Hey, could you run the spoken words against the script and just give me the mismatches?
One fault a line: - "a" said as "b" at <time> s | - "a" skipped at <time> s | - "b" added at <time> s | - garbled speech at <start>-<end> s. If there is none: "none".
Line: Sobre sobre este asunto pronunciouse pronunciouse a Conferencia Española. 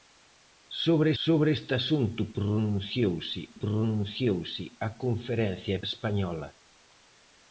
none